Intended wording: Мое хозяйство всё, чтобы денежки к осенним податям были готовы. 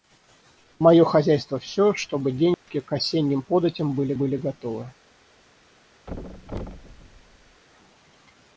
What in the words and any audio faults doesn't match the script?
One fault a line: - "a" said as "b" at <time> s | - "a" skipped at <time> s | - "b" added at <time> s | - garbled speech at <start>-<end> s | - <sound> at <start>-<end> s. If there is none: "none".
- dropout at 2.5-2.7 s
- "были" added at 4.1 s
- thud at 6.1-7.6 s